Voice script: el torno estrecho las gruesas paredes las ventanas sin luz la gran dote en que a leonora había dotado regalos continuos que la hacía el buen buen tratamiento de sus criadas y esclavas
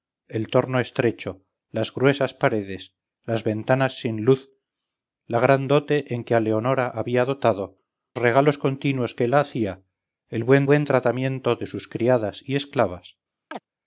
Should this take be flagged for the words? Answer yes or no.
no